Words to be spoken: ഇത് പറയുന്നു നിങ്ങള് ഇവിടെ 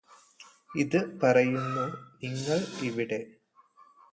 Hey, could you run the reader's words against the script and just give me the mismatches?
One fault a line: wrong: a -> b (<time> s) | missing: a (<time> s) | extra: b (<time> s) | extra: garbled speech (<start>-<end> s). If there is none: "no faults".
no faults